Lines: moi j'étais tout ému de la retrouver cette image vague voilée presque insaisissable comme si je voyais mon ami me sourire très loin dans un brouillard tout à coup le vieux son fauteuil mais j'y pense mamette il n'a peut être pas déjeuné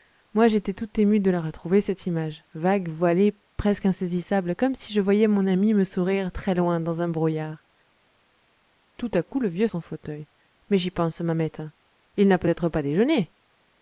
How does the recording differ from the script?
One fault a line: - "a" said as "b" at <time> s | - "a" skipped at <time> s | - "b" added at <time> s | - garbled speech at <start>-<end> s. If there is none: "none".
none